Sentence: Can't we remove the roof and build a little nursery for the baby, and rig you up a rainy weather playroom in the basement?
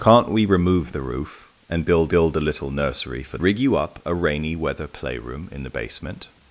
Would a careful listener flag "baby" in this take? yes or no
yes